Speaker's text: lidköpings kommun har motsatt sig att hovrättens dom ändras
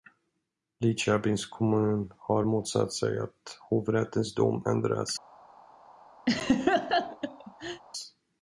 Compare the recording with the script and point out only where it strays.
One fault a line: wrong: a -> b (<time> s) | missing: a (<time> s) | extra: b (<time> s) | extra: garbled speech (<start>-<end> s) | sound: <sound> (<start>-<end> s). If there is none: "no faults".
sound: laugh (6.3-7.8 s)